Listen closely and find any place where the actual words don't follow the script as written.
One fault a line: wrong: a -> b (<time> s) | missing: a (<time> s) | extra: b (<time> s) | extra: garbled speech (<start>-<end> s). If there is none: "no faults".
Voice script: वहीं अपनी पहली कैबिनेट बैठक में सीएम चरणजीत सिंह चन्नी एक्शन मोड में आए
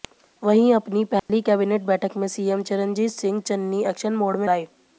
no faults